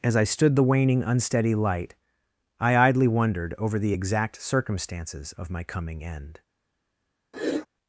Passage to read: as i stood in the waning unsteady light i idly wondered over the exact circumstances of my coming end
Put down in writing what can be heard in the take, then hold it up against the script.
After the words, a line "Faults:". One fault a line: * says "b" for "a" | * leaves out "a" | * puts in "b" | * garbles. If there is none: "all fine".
as i stood the waning unsteady light i idly wondered over the exact circumstances of my coming end
Faults:
* leaves out "in"